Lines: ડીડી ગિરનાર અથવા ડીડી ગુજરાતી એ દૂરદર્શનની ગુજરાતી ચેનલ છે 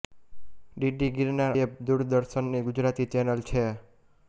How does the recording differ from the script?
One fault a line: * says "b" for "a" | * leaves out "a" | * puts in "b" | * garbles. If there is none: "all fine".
* leaves out "અથવા ડીડી ગુજરાતી"